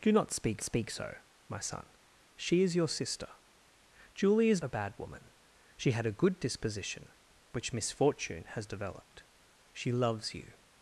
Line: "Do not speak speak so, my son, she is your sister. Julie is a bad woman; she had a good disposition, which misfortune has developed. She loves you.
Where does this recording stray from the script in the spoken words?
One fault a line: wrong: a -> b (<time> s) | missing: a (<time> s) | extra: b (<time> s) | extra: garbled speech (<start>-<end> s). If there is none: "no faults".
no faults